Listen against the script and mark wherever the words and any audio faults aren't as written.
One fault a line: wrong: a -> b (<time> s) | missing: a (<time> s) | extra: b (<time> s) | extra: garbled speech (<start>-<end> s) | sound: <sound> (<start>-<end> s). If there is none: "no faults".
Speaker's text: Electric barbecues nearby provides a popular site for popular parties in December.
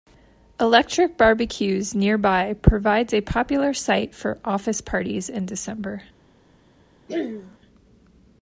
wrong: popular -> office (4.4 s)
sound: throat clearing (7.1-7.6 s)